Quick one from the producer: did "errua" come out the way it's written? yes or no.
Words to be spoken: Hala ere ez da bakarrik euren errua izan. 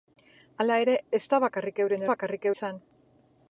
no